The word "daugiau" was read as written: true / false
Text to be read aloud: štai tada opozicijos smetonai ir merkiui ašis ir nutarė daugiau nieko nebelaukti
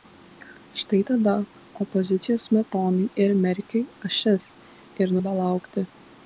false